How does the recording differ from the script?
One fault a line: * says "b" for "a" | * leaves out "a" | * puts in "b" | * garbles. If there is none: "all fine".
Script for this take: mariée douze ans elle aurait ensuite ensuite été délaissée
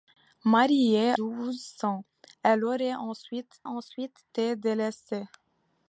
all fine